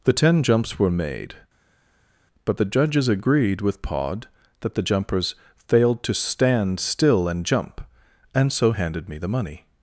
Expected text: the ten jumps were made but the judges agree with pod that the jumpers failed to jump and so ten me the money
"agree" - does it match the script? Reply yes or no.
no